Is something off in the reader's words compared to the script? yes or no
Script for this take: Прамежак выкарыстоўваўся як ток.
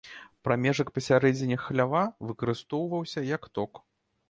yes